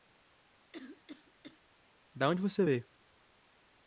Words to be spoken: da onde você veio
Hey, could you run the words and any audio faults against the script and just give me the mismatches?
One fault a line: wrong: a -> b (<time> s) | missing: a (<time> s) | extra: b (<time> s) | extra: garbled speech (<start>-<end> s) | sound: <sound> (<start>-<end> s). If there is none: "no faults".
sound: cough (0.7-1.6 s)